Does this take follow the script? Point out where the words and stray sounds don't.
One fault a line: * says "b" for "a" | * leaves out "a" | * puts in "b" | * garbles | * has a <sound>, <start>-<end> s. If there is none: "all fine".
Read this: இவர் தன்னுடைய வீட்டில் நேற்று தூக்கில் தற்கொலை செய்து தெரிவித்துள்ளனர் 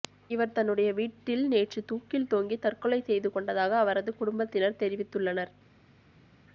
* puts in "தொங்கி"
* puts in "கொண்டதாக அவரது குடும்பத்தினர்"